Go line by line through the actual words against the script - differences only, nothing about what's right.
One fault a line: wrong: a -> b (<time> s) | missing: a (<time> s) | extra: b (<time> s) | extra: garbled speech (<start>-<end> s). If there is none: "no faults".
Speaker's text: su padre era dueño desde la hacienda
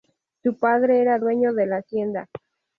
wrong: desde -> de (1.5 s)